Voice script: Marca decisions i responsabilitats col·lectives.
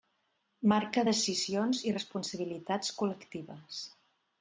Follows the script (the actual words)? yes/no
yes